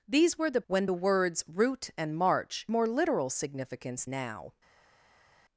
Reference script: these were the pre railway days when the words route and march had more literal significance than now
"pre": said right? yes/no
no